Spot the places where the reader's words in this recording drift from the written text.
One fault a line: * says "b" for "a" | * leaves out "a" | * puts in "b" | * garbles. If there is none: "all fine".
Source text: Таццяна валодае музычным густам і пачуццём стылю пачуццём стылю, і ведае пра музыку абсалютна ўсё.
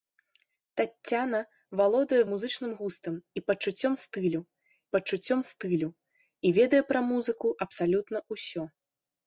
all fine